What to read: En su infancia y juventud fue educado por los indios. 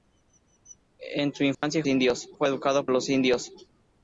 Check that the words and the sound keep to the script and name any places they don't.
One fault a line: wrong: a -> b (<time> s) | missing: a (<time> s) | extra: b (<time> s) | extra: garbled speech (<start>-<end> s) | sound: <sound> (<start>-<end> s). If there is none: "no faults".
sound: dropout (1.5-1.6 s)
wrong: juventud -> indios (1.9 s)
missing: por (2.9 s)